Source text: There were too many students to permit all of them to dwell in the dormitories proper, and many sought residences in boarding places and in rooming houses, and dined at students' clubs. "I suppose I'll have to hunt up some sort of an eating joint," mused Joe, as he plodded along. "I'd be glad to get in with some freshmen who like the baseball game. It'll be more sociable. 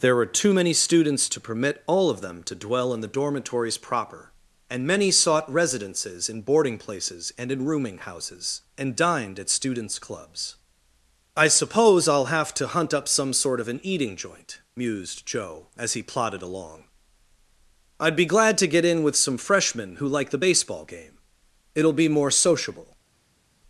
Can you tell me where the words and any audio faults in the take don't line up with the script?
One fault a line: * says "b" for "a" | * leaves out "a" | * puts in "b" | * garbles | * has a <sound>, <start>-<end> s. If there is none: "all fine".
all fine